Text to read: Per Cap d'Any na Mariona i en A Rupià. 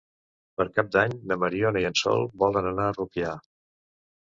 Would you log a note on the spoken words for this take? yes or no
yes